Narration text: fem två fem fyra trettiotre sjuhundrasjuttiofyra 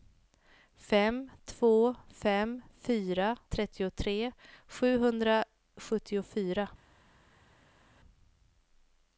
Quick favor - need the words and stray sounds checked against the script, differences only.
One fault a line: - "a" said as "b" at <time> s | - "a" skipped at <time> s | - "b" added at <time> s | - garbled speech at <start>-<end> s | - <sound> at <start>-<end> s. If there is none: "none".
none